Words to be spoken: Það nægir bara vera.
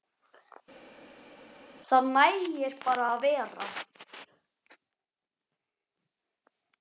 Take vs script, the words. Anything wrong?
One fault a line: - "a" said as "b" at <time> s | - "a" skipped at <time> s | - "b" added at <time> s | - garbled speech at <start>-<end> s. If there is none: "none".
- "að" added at 3.1 s